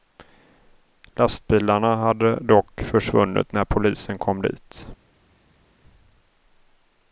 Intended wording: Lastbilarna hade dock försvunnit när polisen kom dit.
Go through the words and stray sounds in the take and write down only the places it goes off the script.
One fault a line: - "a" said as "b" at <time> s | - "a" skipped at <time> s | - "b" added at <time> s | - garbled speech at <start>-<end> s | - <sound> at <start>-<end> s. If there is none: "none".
none